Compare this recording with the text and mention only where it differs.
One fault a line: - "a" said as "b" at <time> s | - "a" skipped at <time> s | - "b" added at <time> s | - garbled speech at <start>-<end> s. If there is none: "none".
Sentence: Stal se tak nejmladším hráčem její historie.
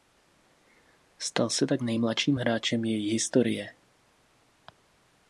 none